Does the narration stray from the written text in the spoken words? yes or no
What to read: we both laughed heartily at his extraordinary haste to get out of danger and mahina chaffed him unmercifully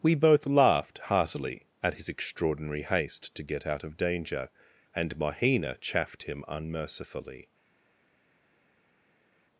no